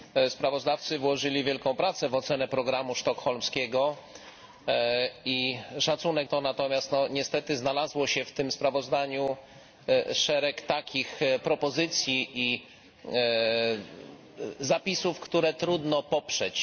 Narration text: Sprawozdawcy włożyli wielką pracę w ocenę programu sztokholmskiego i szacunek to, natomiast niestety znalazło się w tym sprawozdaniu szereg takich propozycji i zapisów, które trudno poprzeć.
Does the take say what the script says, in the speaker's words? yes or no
yes